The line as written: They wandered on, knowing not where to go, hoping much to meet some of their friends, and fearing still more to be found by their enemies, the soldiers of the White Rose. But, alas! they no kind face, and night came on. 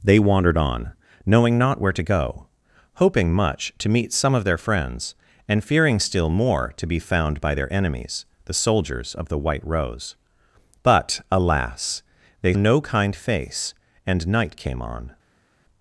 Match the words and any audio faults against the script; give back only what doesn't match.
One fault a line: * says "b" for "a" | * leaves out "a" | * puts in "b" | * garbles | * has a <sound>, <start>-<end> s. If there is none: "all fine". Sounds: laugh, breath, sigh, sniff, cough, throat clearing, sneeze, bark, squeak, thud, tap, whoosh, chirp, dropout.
all fine